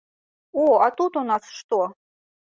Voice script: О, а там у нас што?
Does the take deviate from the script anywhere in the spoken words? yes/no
yes